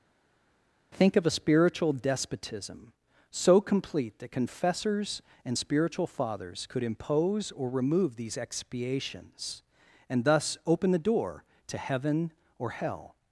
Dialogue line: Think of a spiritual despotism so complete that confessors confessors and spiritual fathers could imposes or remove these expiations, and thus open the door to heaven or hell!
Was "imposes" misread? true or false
true